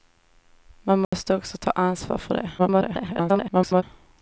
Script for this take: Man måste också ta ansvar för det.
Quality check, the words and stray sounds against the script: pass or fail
fail